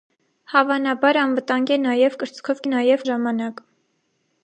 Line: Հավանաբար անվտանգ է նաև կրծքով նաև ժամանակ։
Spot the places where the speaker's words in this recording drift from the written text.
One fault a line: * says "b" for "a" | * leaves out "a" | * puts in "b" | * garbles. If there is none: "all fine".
all fine